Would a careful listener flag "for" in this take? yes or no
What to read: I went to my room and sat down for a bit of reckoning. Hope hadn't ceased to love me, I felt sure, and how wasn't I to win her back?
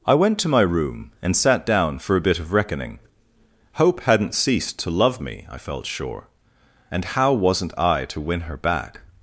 no